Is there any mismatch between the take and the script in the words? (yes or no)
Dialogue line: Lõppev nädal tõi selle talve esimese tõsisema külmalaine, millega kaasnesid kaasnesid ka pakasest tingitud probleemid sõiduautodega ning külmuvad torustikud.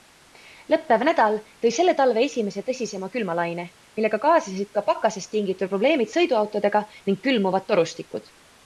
yes